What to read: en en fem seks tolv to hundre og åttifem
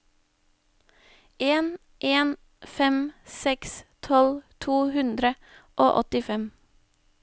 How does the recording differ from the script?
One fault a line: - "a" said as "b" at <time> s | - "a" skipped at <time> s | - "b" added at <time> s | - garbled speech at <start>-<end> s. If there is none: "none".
none